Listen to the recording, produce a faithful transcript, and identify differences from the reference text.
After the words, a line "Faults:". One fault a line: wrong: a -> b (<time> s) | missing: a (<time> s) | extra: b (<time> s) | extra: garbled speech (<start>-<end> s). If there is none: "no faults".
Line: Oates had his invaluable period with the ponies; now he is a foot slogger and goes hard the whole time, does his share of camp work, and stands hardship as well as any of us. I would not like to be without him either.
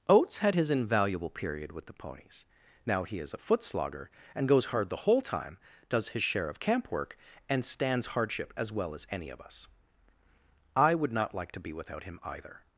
Oates had his invaluable period with the ponies; now he is a foot slogger and goes hard the whole time, does his share of camp work, and stands hardship as well as any of us. I would not like to be without him either.
Faults:
no faults